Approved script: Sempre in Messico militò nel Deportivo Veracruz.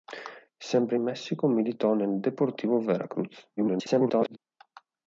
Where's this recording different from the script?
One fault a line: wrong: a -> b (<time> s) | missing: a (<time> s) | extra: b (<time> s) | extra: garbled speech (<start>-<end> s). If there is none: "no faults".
extra: garbled speech (3.6-4.4 s)